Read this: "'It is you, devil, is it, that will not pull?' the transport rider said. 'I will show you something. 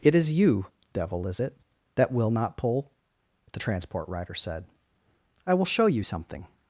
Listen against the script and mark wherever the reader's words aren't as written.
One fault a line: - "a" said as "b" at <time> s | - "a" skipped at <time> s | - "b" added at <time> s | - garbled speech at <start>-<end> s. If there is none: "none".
none